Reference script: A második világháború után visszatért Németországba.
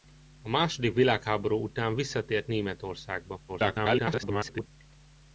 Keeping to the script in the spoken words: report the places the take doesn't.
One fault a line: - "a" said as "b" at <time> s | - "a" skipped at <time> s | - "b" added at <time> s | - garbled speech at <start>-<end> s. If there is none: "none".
- garbled speech at 3.5-4.7 s